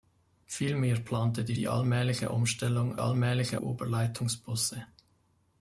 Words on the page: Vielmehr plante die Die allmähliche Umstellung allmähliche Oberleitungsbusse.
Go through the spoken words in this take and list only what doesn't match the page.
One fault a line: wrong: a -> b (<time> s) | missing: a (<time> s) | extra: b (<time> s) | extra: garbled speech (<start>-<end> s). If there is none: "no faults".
no faults